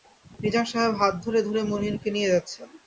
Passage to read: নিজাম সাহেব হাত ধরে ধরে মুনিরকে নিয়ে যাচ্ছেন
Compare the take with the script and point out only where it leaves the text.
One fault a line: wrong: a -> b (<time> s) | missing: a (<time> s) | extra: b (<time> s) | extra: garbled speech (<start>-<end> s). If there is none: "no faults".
no faults